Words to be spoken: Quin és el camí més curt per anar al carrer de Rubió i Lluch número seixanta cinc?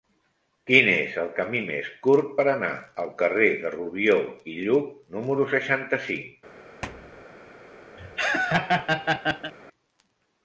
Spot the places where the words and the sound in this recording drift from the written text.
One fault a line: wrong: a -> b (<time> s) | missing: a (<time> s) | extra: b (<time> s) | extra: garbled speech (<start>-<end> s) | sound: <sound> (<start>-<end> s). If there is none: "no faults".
sound: thud (6.8-7.3 s)
sound: laugh (8.0-9.5 s)